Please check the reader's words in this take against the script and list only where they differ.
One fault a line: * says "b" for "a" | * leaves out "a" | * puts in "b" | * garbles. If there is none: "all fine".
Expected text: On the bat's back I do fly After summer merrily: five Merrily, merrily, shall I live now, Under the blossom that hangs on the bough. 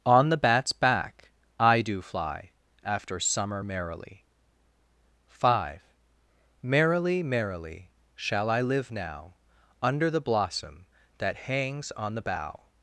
all fine